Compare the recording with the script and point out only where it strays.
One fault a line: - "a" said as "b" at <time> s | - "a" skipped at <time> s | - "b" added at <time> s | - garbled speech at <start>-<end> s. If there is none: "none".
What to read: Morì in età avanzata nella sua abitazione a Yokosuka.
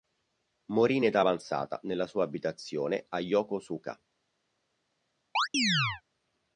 none